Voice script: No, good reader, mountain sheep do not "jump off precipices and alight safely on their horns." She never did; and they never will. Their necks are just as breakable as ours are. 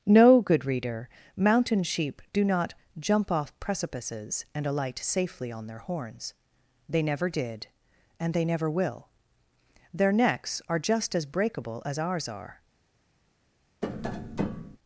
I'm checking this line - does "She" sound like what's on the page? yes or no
no